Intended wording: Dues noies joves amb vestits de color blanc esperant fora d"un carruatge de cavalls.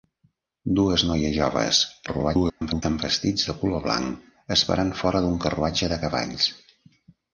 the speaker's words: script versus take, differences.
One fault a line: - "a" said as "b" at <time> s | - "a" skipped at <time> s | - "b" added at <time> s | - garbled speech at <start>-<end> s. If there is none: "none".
- garbled speech at 2.1-2.8 s